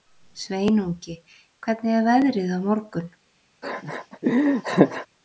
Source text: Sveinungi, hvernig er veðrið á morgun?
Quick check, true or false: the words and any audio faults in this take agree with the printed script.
false